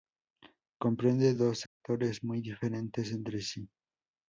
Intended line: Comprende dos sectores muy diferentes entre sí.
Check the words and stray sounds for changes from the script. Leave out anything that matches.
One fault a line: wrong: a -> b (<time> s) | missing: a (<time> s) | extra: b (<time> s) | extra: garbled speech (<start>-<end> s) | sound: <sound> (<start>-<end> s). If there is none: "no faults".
sound: dropout (1.7-1.8 s)